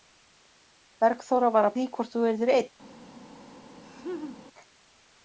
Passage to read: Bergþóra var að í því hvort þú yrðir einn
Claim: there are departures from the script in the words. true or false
false